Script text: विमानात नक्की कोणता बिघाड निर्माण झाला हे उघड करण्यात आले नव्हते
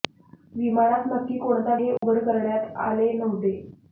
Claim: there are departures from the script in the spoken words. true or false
true